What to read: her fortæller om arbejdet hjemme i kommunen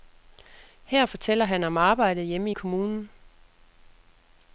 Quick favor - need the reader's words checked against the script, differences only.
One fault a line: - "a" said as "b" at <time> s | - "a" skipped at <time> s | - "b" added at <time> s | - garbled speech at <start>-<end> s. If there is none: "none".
- "han" added at 1.4 s